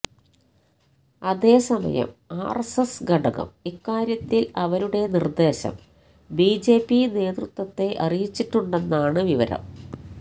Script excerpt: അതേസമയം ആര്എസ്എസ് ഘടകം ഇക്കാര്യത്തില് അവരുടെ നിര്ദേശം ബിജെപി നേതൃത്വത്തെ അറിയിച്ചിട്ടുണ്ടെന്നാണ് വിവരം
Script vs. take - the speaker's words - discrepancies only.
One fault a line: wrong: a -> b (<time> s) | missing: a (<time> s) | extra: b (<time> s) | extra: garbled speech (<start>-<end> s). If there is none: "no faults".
no faults